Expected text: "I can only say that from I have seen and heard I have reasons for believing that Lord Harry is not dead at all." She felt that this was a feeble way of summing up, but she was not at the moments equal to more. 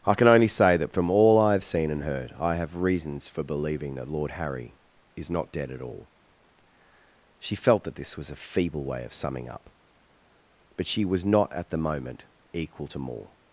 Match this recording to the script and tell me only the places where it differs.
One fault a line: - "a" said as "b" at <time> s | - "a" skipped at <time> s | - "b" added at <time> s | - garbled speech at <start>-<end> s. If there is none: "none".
- "all" added at 1.1 s
- "moments" said as "moment" at 11.8 s